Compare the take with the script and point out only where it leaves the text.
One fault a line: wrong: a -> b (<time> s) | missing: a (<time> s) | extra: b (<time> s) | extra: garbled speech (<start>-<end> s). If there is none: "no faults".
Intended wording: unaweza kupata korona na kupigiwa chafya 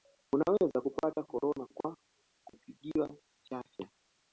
wrong: na -> kwa (1.7 s)